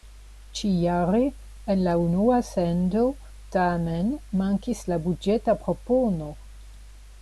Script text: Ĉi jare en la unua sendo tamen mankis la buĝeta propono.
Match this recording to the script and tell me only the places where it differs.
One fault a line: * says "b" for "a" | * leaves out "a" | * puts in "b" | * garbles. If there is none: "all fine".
all fine